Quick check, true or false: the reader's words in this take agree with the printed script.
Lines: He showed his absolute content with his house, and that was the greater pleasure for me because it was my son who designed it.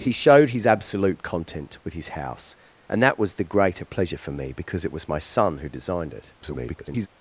false